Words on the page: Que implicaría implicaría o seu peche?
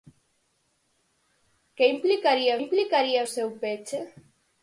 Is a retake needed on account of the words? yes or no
no